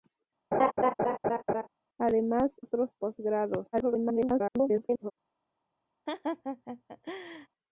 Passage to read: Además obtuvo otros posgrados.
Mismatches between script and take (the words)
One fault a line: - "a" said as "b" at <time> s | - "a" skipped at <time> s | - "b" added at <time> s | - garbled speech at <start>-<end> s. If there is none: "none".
- "obtuvo" skipped at 2.5 s
- garbled speech at 3.7-5.1 s